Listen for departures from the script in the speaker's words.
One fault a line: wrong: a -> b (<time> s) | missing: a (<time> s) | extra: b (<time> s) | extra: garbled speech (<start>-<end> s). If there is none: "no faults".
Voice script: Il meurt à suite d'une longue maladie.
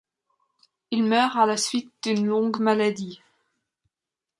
extra: la (1.4 s)